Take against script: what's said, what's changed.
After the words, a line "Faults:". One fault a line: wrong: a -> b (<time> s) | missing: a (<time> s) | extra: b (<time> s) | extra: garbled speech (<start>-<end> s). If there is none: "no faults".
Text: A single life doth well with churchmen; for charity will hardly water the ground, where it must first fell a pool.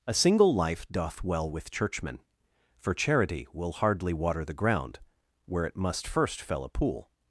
A single life doth well with churchmen; for charity will hardly water the ground, where it must first fell a pool.
Faults:
no faults